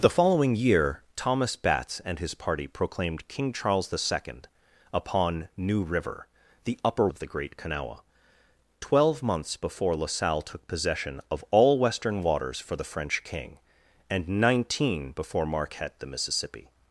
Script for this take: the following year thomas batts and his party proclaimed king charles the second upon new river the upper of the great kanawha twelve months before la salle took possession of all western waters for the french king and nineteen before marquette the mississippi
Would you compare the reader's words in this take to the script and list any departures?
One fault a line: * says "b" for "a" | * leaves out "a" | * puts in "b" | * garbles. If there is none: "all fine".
all fine